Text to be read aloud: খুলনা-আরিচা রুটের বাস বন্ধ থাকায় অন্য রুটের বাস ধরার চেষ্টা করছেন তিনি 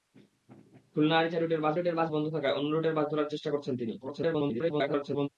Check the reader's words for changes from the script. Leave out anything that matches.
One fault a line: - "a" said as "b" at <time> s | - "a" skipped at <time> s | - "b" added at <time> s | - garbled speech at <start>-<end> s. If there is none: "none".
- "রুটের বাস" added at 1.7 s
- garbled speech at 4.0-5.3 s